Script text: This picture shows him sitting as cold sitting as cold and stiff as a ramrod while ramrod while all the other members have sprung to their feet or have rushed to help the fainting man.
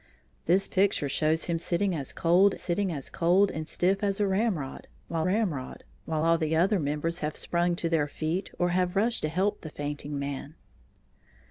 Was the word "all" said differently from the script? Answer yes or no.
no